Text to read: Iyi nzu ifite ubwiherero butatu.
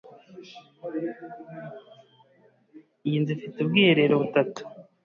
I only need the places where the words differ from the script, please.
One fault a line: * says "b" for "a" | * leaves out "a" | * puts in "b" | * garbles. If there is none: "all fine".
all fine